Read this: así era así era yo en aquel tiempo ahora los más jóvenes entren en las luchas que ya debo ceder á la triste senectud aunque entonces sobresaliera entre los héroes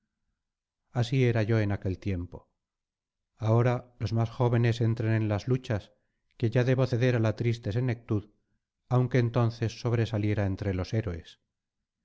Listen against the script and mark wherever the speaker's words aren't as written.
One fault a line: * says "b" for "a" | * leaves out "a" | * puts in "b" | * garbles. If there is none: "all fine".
* leaves out "así era"